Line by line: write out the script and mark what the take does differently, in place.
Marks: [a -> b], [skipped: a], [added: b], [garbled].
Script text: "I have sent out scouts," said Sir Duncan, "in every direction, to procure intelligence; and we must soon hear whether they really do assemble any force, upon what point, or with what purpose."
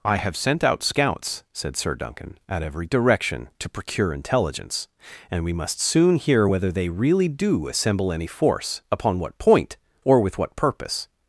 "I have sent out scouts," said Sir Duncan, ["in -> at] every direction, to procure intelligence; and we must soon hear whether they really do assemble any force, upon what point, or with what purpose."